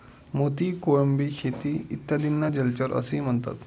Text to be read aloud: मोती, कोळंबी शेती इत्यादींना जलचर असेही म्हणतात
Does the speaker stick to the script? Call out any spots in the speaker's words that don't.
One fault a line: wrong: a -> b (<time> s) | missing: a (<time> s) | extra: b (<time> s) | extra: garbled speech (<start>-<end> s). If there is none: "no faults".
no faults